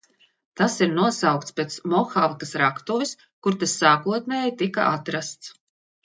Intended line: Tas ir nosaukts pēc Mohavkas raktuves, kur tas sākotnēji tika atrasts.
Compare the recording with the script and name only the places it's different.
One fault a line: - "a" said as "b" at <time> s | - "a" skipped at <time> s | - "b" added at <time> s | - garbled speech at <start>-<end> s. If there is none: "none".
none